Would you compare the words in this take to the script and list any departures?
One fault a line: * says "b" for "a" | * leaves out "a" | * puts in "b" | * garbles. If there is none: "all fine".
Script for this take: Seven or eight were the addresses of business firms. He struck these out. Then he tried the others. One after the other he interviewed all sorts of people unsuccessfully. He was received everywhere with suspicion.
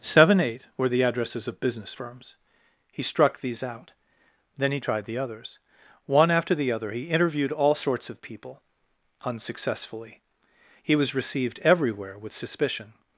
* leaves out "or"